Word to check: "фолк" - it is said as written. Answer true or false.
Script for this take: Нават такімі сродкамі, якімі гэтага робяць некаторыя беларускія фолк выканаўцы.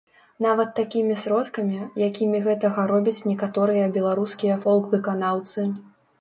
true